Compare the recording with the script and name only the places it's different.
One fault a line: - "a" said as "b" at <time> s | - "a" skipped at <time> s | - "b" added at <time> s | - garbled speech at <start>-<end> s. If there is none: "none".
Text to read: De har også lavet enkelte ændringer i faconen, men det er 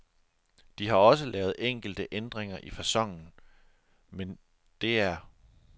none